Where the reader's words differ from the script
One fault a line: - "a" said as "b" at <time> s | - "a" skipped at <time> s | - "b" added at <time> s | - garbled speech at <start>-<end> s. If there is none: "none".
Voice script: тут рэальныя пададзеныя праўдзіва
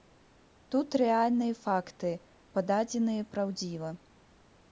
- "факты" added at 1.6 s